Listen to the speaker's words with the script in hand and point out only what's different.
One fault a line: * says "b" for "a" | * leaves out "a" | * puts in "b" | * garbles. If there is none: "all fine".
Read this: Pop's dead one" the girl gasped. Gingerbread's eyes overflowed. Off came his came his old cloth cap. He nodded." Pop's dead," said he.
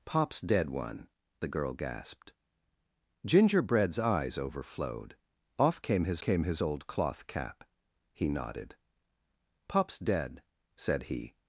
all fine